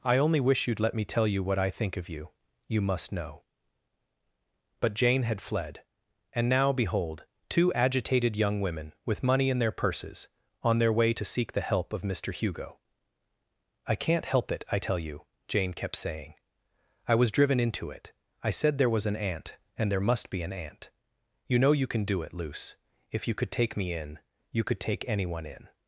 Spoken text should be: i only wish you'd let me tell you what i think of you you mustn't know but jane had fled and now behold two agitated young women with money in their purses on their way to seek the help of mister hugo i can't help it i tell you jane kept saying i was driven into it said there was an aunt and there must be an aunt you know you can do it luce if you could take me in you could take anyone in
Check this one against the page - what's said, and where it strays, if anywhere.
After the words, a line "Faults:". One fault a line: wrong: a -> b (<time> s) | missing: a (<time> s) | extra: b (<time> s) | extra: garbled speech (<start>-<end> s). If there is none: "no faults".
i only wish you'd let me tell you what i think of you you must know but jane had fled and now behold two agitated young women with money in their purses on their way to seek the help of mister hugo i can't help it i tell you jane kept saying i was driven into it i said there was an aunt and there must be an aunt you know you can do it luce if you could take me in you could take anyone in
Faults:
wrong: mustn't -> must (2.8 s)
extra: i (18.4 s)